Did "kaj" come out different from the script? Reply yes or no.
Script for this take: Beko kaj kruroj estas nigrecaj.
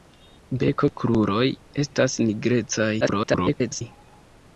yes